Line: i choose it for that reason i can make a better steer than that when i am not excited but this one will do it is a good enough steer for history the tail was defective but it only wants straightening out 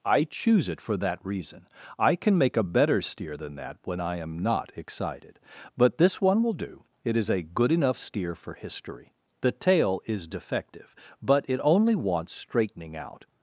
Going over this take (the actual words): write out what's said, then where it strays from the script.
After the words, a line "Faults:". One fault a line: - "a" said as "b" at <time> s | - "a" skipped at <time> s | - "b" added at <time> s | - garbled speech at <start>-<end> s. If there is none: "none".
i choose it for that reason i can make a better steer than that when i am not excited but this one will do it is a good enough steer for history the tail is defective but it only wants straightening out
Faults:
- "was" said as "is" at 10.0 s